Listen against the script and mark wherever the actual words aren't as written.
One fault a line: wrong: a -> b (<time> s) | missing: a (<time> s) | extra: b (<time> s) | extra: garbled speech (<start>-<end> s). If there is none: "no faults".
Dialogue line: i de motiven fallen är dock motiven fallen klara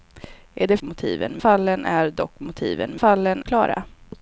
no faults